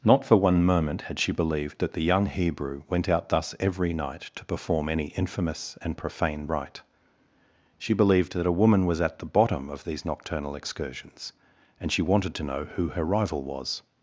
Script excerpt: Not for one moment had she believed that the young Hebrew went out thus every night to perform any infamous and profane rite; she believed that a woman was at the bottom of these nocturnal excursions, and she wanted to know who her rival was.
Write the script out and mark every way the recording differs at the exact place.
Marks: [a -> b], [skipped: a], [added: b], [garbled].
Not for one moment had she believed that the young Hebrew went out thus every night to perform any infamous and profane rite; she believed that a woman was at the bottom of these nocturnal excursions, and she wanted to know who her rival was.